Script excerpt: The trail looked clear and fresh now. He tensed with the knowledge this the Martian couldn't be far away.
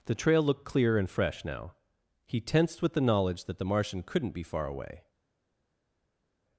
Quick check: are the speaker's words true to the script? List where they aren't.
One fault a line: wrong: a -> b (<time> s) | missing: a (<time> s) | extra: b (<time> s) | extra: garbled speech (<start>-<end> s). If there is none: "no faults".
wrong: this -> that (3.5 s)